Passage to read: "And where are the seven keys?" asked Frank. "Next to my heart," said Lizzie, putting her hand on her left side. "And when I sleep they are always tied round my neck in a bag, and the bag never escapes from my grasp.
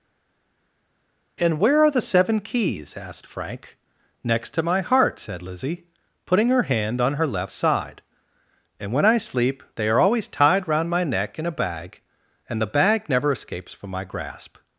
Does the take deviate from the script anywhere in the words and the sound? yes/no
no